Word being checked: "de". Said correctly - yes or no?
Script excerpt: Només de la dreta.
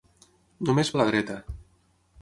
yes